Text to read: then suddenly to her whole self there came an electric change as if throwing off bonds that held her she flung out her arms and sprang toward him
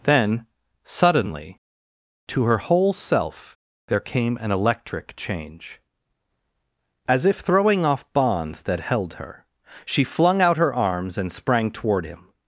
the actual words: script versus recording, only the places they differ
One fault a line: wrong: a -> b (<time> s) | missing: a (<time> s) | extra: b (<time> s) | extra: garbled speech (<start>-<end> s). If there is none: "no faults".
no faults